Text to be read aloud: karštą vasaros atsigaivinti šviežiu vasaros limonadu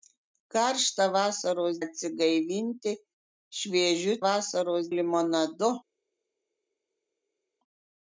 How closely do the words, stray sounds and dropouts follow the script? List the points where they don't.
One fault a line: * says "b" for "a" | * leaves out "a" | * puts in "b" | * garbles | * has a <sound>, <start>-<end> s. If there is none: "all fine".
all fine